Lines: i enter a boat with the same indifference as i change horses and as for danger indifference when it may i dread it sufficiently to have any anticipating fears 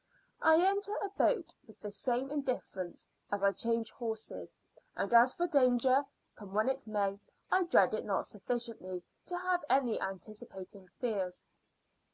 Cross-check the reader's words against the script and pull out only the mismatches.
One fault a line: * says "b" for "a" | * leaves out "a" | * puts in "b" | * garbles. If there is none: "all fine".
* says "come" for "indifference"
* puts in "not"